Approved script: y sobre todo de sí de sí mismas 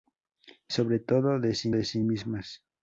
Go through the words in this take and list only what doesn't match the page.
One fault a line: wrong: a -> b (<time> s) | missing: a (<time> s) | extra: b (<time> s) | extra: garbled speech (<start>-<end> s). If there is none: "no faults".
no faults